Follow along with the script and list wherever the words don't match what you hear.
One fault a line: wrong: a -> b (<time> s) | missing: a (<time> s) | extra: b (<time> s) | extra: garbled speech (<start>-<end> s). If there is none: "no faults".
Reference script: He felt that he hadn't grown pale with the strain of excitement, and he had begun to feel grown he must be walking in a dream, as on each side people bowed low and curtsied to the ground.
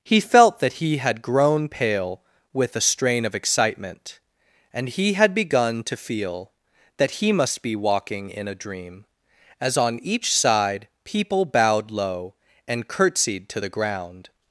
wrong: hadn't -> had (1.0 s)
wrong: grown -> that (7.0 s)